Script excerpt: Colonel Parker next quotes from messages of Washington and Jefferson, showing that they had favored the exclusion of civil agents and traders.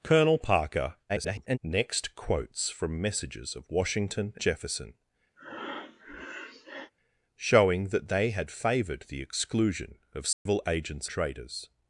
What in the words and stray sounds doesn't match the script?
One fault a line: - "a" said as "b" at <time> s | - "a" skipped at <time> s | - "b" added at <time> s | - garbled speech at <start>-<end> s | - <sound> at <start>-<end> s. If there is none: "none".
- garbled speech at 1.1-1.6 s
- "and" skipped at 4.3 s
- breath at 5.4-6.9 s
- dropout at 10.3-10.5 s
- "and" skipped at 11.1 s